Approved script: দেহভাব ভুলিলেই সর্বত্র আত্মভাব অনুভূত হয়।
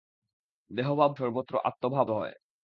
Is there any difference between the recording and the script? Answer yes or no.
yes